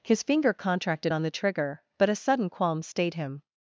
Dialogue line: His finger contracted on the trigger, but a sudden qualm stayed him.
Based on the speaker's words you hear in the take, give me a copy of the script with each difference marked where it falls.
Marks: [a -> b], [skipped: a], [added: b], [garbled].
His finger contracted on the trigger, but a sudden qualm stayed him.